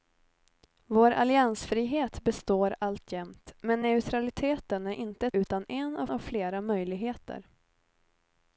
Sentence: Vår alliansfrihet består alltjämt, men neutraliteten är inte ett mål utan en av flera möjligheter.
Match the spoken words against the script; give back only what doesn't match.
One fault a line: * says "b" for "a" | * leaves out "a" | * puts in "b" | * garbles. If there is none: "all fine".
* leaves out "ett mål"
* puts in "av"